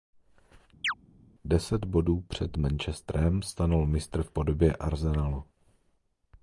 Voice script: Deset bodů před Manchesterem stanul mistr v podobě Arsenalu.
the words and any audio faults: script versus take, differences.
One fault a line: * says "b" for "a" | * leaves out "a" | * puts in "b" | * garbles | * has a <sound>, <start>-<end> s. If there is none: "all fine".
* has a chirp, 0.8-0.9 s